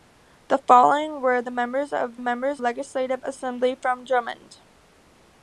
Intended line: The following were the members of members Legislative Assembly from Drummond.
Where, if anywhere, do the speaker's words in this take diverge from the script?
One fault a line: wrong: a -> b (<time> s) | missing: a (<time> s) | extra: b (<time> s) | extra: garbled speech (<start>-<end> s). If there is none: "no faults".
no faults